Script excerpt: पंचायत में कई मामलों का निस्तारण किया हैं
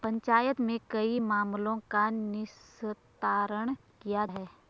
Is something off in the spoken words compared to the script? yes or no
no